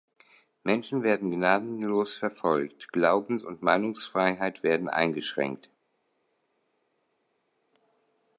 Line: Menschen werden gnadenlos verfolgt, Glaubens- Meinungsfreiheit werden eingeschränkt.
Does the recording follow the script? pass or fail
fail